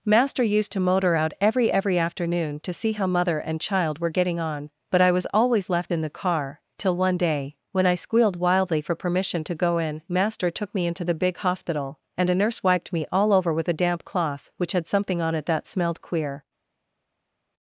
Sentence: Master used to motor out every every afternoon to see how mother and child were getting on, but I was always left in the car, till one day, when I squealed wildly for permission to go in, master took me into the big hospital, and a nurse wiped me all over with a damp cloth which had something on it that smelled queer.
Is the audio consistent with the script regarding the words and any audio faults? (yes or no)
yes